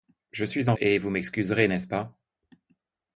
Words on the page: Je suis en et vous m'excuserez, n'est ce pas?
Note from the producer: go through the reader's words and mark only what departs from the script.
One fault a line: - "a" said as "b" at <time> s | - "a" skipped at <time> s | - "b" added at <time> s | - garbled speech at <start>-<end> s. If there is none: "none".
none